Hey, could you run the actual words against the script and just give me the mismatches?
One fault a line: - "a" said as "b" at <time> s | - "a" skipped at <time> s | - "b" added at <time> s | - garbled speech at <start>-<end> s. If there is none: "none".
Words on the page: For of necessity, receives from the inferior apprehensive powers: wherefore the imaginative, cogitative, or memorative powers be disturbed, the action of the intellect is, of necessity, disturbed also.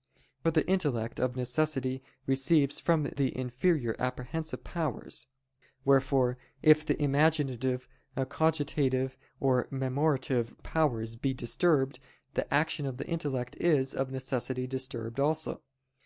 - "the intellect" added at 0.5 s
- "if" added at 6.6 s